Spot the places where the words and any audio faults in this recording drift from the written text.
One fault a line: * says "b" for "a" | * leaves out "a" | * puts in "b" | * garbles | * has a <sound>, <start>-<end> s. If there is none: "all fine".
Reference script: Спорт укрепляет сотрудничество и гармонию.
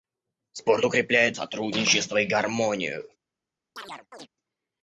* has a chirp, 3.8-4.3 s